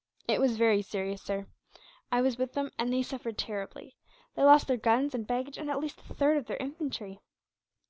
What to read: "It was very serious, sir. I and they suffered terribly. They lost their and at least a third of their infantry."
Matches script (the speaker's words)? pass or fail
fail